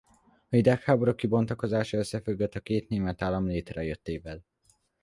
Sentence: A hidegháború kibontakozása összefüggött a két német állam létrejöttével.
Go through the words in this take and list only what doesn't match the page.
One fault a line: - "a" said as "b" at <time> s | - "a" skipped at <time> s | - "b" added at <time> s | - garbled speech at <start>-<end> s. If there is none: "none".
none